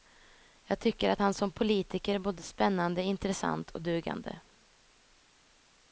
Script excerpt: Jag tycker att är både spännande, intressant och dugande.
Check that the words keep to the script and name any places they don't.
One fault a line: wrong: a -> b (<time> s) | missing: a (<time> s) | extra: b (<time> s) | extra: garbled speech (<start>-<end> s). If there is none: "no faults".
extra: han som politiker (1.2 s)